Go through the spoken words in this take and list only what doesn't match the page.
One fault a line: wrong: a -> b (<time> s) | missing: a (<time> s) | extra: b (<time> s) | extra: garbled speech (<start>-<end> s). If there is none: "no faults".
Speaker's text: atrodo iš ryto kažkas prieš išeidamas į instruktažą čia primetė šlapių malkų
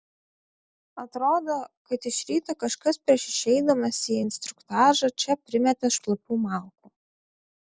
extra: kad (1.9 s)